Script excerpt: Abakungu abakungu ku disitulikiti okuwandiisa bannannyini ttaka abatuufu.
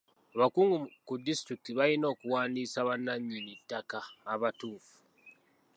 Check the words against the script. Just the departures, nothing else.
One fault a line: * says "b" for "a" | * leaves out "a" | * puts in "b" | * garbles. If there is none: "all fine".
* leaves out "abakungu"
* puts in "balina"